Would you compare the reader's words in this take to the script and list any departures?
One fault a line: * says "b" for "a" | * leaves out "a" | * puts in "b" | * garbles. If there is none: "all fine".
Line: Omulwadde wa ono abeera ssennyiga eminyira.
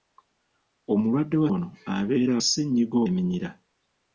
all fine